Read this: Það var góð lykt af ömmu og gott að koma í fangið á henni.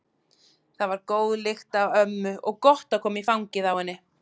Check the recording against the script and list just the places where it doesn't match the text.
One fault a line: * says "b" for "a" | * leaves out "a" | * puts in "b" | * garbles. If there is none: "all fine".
all fine